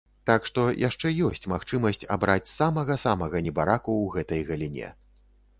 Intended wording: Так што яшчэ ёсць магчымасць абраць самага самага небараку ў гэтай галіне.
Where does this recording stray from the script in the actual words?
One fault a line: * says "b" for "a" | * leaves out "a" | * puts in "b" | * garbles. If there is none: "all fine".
all fine